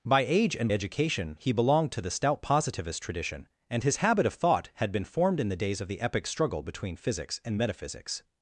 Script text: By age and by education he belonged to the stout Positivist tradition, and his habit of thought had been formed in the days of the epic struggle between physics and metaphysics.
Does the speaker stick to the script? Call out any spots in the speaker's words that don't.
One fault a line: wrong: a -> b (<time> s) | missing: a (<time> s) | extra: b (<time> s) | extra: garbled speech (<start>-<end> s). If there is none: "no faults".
missing: by (0.7 s)